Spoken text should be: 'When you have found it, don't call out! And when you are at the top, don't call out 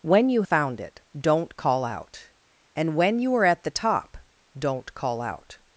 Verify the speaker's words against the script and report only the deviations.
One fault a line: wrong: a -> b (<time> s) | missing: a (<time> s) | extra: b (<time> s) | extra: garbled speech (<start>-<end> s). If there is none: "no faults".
missing: have (0.4 s)